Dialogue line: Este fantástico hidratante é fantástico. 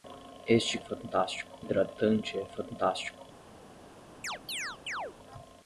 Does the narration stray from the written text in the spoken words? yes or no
no